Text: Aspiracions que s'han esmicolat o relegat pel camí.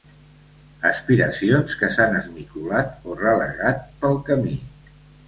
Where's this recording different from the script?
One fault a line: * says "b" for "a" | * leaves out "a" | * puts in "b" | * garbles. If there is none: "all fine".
all fine